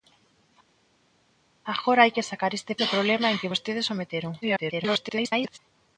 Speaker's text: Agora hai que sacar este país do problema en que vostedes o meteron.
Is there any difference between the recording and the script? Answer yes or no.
yes